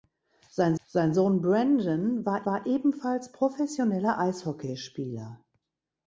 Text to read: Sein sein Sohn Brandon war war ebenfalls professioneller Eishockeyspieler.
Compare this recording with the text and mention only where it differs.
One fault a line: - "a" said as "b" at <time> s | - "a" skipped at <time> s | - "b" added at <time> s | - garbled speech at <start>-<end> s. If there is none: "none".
none